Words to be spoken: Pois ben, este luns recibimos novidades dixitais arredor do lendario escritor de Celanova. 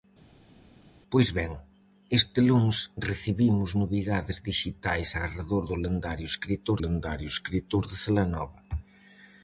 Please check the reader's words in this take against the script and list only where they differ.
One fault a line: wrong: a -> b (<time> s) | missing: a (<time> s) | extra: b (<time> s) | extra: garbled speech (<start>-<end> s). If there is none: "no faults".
extra: lendario escritor (6.8 s)